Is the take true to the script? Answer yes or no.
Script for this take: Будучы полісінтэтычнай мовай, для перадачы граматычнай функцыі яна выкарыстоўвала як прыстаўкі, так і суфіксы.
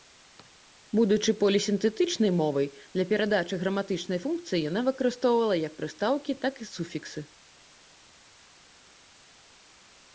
yes